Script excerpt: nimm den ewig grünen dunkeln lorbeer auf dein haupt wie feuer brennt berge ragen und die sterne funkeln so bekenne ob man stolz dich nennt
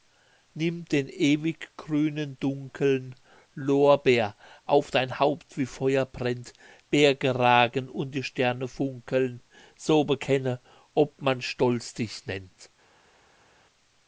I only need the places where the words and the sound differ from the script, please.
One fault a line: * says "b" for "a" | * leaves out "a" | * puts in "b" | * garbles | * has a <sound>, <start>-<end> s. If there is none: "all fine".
all fine